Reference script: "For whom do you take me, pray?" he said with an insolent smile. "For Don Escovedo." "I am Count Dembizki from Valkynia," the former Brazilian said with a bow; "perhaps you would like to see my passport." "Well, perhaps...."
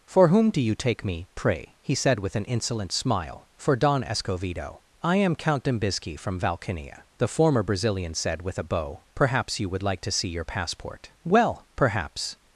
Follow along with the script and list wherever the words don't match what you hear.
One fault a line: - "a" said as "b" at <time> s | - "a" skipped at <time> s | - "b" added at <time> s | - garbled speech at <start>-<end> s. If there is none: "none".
- "my" said as "your" at 10.3 s